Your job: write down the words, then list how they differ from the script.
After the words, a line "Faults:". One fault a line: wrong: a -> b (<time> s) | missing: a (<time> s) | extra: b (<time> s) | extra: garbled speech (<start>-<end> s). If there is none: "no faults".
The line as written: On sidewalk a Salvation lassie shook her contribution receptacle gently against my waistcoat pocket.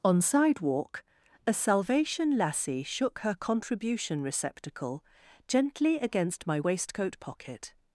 On sidewalk a Salvation lassie shook her contribution receptacle gently against my waistcoat pocket.
Faults:
no faults